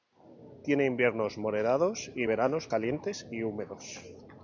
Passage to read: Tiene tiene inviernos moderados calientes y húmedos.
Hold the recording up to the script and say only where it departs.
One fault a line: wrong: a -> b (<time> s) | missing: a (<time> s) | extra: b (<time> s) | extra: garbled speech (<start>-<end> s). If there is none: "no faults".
missing: tiene (0.9 s)
extra: y veranos (2.1 s)